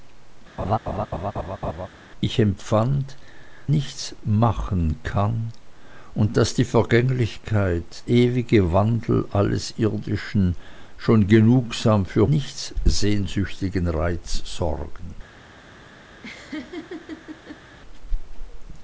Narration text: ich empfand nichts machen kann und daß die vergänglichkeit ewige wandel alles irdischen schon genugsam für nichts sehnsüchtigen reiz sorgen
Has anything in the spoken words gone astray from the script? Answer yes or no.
no